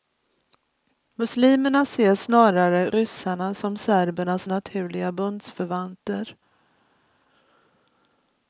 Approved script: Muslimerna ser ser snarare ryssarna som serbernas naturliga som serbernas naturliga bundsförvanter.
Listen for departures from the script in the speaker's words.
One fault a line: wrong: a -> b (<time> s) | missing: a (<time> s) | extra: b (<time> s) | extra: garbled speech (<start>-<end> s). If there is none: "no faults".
missing: ser (2.1 s)
missing: som serbernas naturliga (5.1 s)